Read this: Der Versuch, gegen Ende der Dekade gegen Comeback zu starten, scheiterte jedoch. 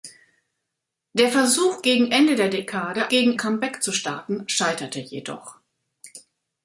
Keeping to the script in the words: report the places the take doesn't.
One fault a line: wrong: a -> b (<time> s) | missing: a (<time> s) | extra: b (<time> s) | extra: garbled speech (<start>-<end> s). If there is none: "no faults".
no faults